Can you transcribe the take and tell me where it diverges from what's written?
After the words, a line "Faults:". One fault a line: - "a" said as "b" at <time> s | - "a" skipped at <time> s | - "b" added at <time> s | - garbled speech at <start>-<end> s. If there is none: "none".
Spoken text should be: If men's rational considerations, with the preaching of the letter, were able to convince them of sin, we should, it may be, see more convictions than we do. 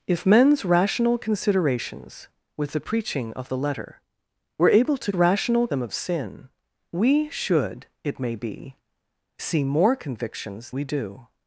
If men's rational considerations, with the preaching of the letter, were able to rational them of sin, we should, it may be, see more convictions we do.
Faults:
- "convince" said as "rational" at 5.1 s
- "than" skipped at 10.7 s